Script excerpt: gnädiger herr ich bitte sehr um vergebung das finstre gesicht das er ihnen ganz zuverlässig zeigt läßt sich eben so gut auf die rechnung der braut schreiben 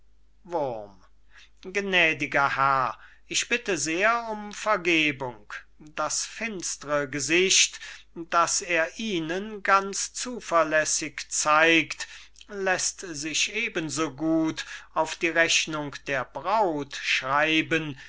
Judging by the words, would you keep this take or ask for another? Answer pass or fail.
pass